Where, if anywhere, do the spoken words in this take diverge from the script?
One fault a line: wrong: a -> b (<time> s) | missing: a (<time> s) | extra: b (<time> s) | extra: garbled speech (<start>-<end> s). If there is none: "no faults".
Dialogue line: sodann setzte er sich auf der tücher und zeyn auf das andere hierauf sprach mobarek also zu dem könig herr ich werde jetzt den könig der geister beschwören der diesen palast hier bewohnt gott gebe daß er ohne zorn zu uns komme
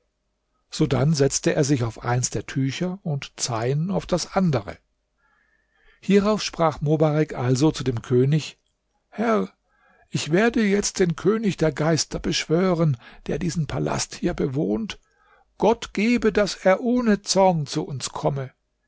extra: eins (2.0 s)